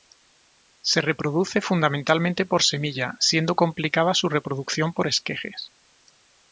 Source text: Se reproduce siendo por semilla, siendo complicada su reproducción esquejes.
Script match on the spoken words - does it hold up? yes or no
no